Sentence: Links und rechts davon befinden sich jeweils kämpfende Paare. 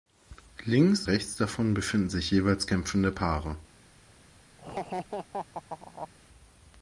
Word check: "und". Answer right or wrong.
wrong